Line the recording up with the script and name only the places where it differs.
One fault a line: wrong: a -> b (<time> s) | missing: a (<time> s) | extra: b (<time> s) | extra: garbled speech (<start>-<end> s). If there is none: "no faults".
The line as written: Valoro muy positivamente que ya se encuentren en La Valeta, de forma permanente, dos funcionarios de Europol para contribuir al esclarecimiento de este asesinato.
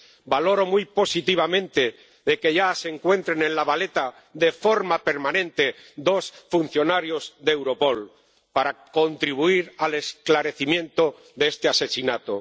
no faults